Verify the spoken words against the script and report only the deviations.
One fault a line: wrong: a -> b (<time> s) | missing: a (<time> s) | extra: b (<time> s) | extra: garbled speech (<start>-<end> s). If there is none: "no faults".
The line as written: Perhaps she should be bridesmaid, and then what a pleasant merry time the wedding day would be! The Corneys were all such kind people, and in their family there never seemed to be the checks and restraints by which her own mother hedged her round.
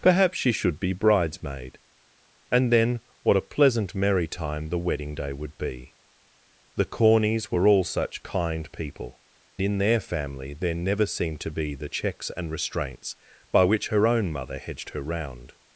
missing: and (9.2 s)